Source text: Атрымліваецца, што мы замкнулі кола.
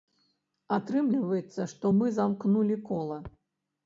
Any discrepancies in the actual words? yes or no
no